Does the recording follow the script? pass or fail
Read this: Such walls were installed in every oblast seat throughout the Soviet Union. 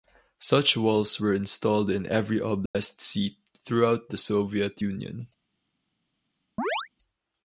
pass